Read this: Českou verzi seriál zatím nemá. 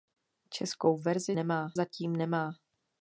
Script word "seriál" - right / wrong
wrong